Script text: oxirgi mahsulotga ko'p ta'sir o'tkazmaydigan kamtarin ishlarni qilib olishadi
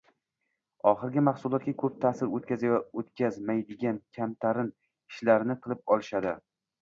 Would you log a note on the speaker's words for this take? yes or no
no